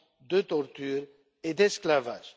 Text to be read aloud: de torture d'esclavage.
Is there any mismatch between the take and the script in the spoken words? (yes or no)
yes